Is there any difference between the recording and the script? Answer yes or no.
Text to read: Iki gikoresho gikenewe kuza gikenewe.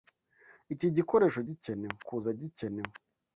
no